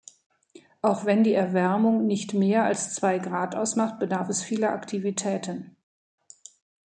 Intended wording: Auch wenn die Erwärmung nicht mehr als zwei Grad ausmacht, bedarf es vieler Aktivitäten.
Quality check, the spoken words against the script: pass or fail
pass